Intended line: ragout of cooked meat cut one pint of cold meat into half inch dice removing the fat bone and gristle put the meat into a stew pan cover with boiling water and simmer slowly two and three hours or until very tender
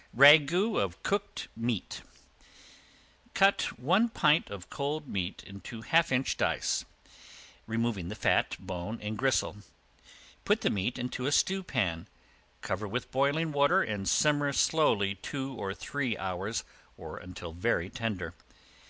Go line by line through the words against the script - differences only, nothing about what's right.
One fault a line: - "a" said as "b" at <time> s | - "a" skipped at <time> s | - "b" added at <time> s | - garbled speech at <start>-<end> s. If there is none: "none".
- "and" said as "or" at 15.5 s